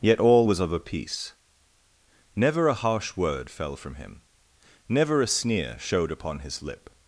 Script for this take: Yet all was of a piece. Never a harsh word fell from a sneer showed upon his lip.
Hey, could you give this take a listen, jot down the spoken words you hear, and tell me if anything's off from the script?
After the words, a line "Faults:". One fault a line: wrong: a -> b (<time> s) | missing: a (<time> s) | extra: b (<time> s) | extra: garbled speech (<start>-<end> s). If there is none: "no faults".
Yet all was of a piece. Never a harsh word fell from him, never a sneer showed upon his lip.
Faults:
extra: him never (4.0 s)